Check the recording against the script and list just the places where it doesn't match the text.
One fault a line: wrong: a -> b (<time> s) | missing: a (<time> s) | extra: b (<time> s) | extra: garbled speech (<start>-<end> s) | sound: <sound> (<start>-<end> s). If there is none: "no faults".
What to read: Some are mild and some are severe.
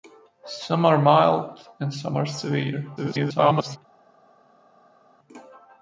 extra: garbled speech (3.0-3.8 s)